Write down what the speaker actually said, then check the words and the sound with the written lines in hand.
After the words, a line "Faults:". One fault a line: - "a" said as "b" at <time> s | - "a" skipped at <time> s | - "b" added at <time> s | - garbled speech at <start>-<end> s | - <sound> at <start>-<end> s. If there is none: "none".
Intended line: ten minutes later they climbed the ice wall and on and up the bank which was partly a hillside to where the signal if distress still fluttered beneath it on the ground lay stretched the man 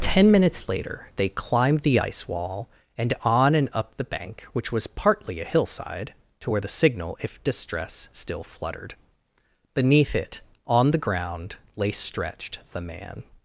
ten minutes later they climbed the ice wall and on and up the bank which was partly a hillside to where the signal if distress still fluttered beneath it on the ground lay stretched the man
Faults:
none